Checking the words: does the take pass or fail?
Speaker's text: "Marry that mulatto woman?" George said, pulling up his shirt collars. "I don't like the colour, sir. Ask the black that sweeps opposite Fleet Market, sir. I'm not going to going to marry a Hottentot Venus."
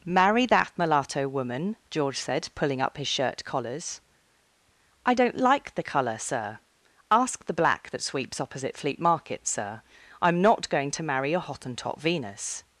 fail